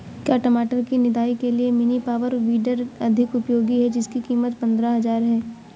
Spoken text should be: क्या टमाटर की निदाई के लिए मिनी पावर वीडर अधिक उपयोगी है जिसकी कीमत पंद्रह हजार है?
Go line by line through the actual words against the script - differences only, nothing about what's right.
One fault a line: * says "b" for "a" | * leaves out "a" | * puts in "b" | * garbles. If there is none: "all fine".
all fine